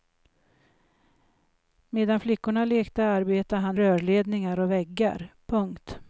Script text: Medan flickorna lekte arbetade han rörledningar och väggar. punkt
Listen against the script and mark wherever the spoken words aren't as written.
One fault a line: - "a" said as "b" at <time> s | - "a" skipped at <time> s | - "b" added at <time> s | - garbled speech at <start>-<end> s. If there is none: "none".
none